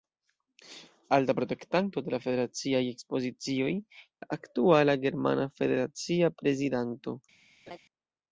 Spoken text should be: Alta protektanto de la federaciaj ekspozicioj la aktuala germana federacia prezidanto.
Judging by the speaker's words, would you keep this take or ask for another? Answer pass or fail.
pass